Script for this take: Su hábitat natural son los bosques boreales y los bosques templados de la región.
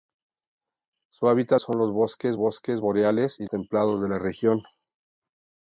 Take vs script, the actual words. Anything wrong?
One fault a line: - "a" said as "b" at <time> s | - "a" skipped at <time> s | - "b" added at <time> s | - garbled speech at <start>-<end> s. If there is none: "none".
- "natural" skipped at 1.6 s
- "bosques" added at 2.4 s
- "los bosques" skipped at 3.4 s